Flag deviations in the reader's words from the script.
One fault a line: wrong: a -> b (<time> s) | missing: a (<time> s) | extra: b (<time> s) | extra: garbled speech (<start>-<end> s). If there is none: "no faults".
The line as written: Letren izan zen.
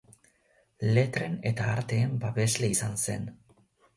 extra: eta arteen babesle (1.5 s)